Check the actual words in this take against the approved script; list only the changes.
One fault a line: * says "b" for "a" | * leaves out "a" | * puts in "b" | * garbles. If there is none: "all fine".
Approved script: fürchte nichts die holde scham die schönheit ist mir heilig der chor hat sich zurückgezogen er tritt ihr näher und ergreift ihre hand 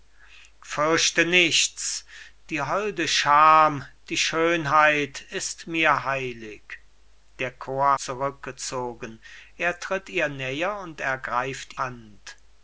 * leaves out "hat sich"
* leaves out "ihre"